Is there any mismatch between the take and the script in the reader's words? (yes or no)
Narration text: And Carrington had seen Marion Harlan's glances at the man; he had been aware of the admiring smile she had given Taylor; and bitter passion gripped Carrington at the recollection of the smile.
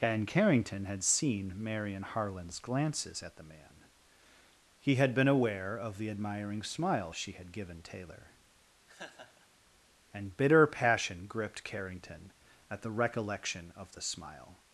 no